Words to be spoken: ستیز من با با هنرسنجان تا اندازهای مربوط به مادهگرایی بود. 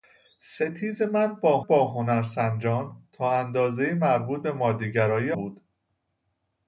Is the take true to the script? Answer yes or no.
yes